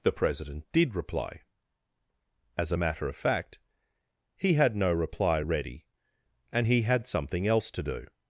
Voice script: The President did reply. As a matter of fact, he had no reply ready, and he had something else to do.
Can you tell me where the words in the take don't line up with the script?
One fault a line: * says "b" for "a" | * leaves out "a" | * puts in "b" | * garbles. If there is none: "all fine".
all fine